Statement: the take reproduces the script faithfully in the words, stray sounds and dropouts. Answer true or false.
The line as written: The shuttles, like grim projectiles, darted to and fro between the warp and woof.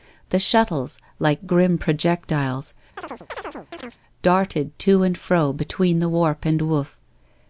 false